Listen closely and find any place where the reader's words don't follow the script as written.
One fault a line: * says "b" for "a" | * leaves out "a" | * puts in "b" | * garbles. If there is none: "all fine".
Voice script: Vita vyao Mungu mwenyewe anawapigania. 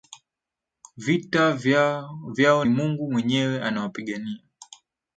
all fine